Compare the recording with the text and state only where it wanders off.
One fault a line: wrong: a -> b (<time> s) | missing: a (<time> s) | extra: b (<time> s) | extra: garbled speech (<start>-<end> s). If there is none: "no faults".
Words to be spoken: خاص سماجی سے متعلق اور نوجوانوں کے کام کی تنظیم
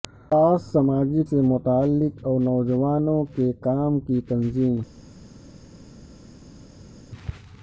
no faults